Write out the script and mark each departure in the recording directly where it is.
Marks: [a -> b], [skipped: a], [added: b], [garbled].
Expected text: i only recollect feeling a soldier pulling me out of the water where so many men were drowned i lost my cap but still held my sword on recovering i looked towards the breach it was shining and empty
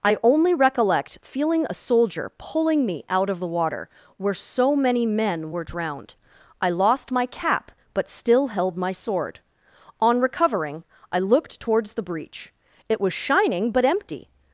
i only recollect feeling a soldier pulling me out of the water where so many men were drowned i lost my cap but still held my sword on recovering i looked towards the breach it was shining [and -> but] empty